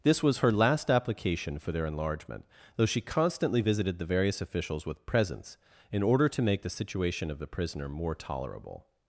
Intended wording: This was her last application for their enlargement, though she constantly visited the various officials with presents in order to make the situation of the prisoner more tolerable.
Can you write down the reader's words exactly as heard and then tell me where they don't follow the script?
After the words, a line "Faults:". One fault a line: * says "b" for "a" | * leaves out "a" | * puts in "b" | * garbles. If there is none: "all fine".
This was her last application for their enlargement, though she constantly visited the various officials with presents in order to make the situation of the prisoner more tolerable.
Faults:
all fine